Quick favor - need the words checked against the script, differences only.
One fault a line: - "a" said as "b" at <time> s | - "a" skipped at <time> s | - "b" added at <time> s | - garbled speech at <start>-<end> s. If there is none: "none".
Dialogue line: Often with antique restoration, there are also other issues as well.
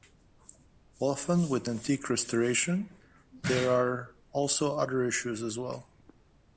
none